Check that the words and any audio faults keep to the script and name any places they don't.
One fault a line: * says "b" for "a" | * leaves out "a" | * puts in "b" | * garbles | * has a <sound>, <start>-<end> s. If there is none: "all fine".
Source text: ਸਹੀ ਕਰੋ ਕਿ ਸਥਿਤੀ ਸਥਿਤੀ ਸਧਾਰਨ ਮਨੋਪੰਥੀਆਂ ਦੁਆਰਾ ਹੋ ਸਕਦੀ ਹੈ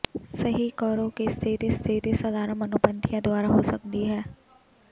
all fine